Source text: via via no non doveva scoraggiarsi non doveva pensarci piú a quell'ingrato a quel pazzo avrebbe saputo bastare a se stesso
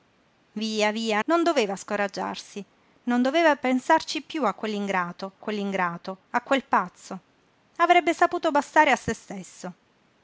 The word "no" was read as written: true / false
false